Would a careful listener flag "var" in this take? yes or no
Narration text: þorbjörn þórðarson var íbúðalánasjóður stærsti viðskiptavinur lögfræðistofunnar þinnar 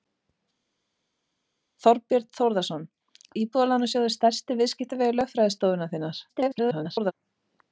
yes